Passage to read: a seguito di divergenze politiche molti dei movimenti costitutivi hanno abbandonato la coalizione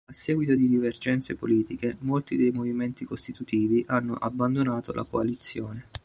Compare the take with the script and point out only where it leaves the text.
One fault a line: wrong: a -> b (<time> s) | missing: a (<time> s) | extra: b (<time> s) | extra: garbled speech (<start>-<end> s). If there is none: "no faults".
no faults